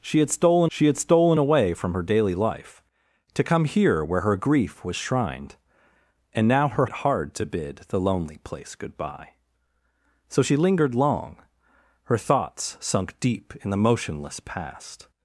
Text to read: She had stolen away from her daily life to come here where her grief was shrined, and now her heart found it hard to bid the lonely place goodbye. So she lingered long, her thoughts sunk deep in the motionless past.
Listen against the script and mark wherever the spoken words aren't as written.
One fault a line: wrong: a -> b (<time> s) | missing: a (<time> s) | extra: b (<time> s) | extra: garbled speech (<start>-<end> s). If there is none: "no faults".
extra: she had stolen (0.7 s)
missing: heart found (6.8 s)